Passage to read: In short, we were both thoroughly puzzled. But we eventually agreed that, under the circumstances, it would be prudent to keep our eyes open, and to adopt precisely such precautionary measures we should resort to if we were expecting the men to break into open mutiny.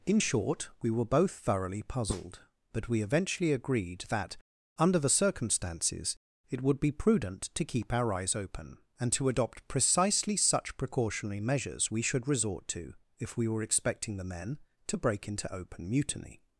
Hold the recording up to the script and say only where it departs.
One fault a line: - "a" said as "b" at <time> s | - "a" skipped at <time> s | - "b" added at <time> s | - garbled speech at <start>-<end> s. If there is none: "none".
none